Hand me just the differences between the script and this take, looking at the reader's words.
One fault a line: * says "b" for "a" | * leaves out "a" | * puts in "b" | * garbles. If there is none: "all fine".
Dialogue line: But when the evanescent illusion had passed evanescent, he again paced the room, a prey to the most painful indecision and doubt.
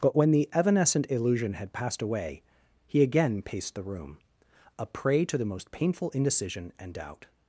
* says "away" for "evanescent"